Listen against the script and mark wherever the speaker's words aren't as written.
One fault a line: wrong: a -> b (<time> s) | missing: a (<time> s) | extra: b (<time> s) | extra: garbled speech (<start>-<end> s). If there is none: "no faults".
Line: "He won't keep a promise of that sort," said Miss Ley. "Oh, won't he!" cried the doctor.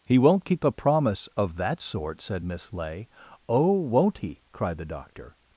no faults